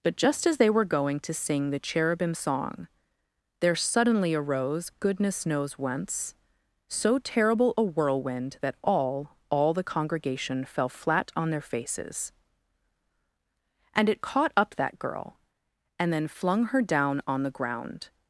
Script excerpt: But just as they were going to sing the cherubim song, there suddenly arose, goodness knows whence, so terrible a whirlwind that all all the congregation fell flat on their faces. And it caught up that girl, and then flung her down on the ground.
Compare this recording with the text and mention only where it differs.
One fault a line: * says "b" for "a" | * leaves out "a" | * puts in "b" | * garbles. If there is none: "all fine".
all fine